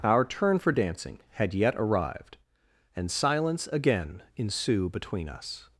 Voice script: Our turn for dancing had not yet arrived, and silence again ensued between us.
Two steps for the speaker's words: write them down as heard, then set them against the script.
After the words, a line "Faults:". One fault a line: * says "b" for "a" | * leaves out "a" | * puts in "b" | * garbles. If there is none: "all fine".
Our turn for dancing had yet arrived, and silence again ensue between us.
Faults:
* leaves out "not"
* says "ensue" for "ensued"